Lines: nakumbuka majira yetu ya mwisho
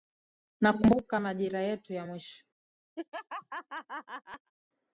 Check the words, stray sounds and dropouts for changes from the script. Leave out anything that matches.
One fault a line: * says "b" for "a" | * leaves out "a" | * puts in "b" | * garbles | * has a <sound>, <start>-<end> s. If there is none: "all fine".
* has a laugh, 3.0-4.5 s